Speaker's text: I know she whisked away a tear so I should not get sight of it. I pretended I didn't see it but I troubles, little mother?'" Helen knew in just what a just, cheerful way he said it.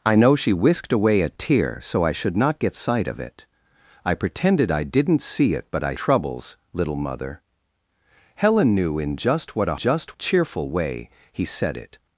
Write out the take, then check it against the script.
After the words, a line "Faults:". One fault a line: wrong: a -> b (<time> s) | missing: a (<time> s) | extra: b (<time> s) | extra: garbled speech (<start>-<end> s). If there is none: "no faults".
I know she whisked away a tear so I should not get sight of it. I pretended I didn't see it but I troubles, little mother?'" Helen knew in just what a just, cheerful way he said it.
Faults:
no faults